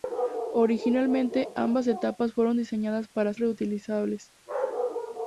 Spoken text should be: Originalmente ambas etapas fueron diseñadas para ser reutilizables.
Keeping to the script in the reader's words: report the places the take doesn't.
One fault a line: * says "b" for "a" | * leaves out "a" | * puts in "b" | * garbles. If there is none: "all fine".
* leaves out "ser"